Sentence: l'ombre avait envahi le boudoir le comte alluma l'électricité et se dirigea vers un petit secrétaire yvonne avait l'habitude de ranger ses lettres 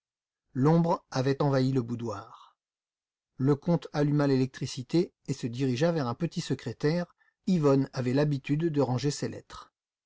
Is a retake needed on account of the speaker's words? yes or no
no